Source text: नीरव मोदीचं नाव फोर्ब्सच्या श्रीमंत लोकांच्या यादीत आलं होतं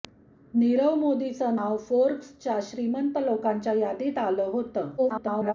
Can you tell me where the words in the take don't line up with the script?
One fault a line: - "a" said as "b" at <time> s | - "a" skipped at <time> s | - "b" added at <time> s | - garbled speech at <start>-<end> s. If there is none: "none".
- garbled speech at 5.0-5.5 s